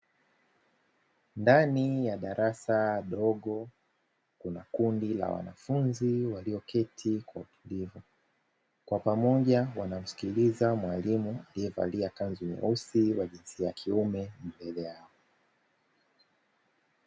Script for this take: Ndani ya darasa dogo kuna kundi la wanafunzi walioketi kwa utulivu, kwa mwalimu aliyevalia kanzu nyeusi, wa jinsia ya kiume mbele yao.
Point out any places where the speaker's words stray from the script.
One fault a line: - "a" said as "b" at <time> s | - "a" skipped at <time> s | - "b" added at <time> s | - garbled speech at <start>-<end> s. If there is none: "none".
- "pamoja wanamsikiliza" added at 9.0 s